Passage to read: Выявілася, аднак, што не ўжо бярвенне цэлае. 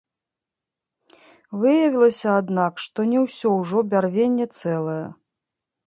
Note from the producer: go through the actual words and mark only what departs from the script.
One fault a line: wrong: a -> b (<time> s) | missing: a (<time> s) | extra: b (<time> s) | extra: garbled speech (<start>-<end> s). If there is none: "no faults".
extra: ўсё (3.3 s)